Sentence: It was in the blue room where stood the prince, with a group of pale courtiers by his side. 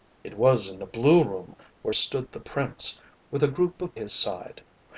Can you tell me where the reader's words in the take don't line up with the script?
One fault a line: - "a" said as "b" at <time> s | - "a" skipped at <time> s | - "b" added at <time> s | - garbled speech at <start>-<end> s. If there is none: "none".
- "pale courtiers by" skipped at 4.0 s